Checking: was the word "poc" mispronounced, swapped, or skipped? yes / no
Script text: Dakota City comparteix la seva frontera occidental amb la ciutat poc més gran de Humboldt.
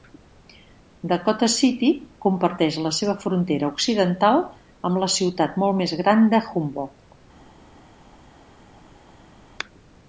yes